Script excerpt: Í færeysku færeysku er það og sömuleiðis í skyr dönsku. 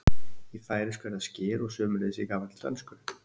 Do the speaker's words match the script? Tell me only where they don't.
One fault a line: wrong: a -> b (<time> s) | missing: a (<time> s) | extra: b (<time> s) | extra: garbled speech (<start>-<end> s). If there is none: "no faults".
missing: færeysku (1.1 s)
extra: skyr (1.3 s)
wrong: skyr -> gamalli (2.3 s)